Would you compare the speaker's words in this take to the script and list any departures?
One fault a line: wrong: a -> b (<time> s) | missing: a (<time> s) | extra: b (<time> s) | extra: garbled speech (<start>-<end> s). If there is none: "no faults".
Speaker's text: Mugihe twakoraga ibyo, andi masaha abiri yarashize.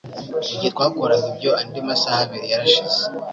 no faults